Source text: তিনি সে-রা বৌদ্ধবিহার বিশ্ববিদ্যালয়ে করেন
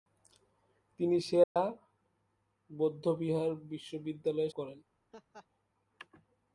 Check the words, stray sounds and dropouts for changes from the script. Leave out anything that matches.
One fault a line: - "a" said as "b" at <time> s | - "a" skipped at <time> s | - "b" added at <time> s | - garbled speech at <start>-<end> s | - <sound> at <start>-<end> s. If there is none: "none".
- dropout at 1.4-1.6 s
- laugh at 5.1-5.5 s